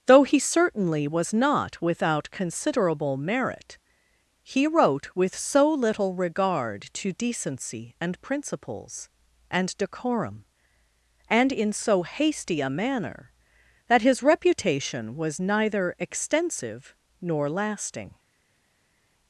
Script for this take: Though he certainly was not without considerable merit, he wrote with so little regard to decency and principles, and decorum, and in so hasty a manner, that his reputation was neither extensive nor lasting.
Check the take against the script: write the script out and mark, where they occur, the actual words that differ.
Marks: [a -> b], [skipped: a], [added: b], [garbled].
Though he certainly was not without considerable merit, he wrote with so little regard to decency and principles, and decorum, and in so hasty a manner, that his reputation was neither extensive nor lasting.